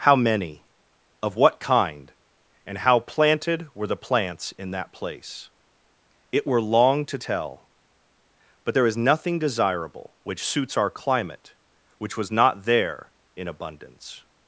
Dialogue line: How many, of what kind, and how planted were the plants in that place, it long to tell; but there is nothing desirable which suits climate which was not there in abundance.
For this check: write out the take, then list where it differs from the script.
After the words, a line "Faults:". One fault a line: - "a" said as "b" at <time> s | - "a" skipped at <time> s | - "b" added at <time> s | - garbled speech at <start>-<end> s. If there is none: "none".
How many, of what kind, and how planted were the plants in that place, it were long to tell; but there is nothing desirable which suits our climate which was not there in abundance.
Faults:
- "were" added at 6.5 s
- "our" added at 10.8 s